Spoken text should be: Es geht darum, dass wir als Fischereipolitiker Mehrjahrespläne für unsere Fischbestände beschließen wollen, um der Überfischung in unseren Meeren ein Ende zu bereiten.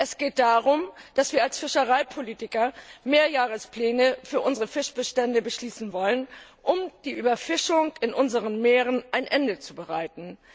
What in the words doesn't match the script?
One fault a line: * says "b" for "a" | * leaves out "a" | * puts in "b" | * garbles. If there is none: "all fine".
all fine